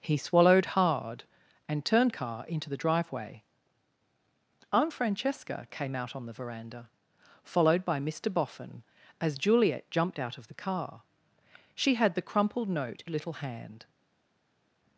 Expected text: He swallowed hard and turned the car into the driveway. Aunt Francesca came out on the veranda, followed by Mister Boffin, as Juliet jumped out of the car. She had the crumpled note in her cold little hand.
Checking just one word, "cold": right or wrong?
wrong